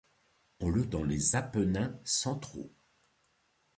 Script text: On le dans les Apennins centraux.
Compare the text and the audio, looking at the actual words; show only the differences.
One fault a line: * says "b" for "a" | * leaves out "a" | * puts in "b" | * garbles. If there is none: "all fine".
all fine